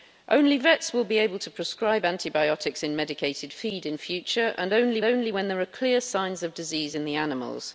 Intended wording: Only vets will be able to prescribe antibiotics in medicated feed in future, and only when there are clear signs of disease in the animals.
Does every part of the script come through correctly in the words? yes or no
no